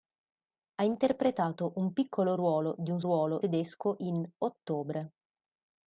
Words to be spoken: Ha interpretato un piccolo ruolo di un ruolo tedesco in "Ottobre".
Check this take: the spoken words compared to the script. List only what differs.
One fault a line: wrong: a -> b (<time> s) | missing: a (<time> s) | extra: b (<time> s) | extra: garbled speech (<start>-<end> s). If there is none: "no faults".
no faults